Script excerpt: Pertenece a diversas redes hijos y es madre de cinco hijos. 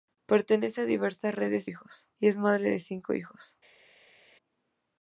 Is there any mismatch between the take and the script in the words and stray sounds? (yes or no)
no